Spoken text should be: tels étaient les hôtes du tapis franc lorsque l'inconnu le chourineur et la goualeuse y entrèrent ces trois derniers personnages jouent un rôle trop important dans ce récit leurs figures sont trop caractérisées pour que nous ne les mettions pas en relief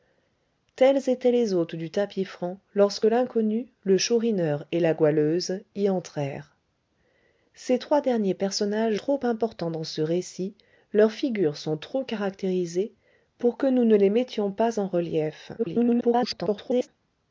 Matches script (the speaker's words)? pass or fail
fail